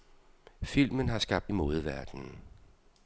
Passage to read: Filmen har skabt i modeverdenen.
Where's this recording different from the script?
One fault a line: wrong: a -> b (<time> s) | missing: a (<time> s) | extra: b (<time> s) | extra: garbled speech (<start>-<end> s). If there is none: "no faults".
no faults